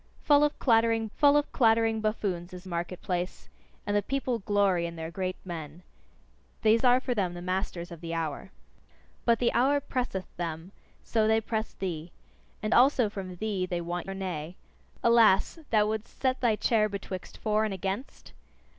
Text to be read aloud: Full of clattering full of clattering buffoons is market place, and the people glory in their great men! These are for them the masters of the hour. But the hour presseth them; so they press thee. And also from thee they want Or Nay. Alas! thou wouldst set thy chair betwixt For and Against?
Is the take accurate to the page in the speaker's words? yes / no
yes